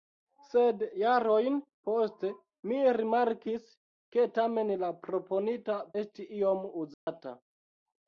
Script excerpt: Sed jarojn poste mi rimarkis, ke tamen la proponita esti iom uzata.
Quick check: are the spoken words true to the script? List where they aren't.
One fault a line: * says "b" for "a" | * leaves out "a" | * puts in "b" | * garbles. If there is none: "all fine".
all fine